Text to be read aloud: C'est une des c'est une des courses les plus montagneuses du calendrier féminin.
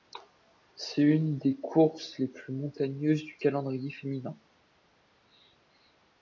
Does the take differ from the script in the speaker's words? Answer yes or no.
yes